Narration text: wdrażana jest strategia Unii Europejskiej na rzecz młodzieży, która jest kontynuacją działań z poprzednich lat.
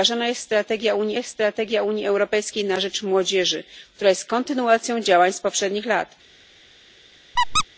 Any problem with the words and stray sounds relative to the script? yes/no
yes